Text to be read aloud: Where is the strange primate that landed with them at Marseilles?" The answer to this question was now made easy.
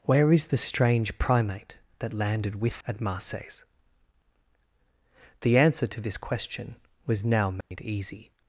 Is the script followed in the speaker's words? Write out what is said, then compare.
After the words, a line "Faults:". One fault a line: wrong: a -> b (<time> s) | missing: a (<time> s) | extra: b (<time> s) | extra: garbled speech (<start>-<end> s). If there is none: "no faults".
Where is the strange primate that landed with at Marseilles?" The answer to this question was now made easy.
Faults:
missing: them (2.8 s)